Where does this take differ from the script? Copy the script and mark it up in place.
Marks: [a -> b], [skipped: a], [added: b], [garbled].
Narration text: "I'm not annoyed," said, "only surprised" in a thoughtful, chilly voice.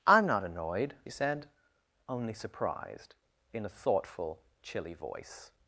"I'm not annoyed," said, "only surprised" in a thoughtful, chilly voice.